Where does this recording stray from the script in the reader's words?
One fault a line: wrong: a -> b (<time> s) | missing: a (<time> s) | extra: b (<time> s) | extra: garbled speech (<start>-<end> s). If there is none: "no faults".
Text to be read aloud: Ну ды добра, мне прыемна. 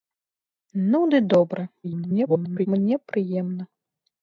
extra: garbled speech (1.8-2.7 s)